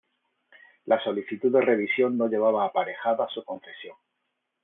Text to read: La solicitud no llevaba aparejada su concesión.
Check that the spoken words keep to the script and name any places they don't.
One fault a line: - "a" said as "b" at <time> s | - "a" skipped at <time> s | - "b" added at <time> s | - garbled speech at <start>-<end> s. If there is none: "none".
- "de revisión" added at 1.5 s